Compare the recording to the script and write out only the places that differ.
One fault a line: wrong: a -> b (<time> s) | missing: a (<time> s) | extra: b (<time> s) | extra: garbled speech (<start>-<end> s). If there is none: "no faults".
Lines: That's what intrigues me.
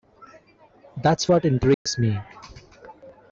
no faults